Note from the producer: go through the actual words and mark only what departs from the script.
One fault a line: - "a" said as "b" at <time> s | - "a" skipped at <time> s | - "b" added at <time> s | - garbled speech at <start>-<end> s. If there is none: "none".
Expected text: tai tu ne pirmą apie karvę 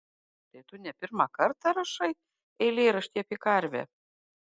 - "kartą rašai eilėraštį" added at 1.4 s